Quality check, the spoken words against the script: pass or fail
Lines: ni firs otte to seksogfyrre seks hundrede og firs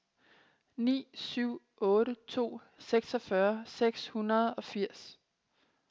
fail